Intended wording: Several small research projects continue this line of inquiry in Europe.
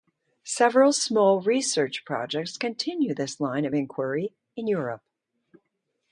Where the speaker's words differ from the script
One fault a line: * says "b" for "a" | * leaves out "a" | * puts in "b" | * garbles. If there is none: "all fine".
all fine